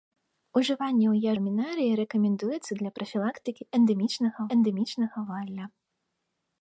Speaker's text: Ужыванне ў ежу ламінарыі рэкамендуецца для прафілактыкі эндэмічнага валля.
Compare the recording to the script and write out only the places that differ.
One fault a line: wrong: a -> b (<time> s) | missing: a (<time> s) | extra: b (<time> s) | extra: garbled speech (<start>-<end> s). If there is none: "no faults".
missing: ежу (1.3 s)
extra: эндэмічнага (4.6 s)